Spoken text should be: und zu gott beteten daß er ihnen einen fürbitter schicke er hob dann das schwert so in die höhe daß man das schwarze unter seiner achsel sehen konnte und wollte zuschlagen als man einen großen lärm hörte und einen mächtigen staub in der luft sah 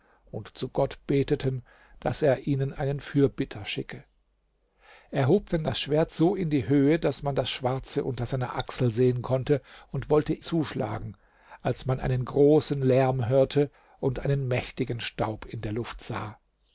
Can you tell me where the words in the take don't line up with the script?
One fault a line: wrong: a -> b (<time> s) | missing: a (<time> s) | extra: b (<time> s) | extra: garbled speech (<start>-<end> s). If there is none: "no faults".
no faults